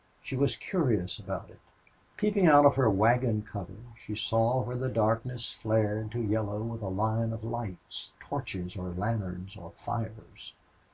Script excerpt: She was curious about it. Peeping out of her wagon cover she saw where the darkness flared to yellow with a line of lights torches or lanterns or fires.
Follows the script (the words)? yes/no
yes